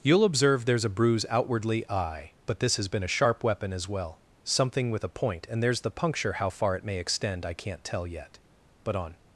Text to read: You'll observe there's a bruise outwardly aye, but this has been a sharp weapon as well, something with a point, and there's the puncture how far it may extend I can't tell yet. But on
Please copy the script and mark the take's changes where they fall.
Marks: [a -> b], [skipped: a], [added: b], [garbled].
You'll observe there's a bruise outwardly aye, but this has been a sharp weapon as well, something with a point, and there's the puncture how far it may extend I can't tell yet. But on